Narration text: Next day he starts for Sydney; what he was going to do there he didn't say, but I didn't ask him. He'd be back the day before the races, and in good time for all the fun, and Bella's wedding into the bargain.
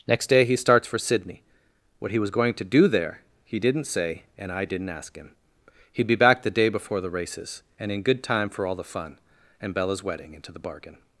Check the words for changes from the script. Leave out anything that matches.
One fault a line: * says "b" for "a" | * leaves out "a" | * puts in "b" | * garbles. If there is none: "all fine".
* says "and" for "but"